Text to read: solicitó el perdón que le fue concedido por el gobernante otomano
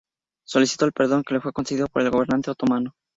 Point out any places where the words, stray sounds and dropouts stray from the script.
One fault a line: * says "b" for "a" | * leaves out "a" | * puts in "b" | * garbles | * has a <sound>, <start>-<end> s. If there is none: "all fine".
all fine